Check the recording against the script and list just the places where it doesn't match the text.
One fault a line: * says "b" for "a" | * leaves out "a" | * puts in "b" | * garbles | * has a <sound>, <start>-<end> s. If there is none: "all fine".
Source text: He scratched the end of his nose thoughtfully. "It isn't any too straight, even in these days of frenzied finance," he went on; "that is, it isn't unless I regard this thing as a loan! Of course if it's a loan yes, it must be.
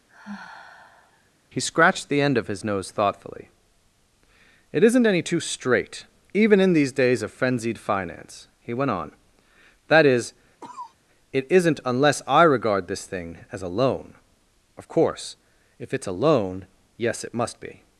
* has a sigh, 0.1-1.3 s
* has a cough, 10.6-10.9 s